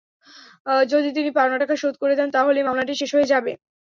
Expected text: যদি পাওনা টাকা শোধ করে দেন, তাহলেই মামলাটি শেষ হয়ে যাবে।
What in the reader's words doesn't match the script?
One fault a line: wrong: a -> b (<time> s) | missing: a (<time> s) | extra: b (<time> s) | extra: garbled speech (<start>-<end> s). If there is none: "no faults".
extra: তিনি (1.2 s)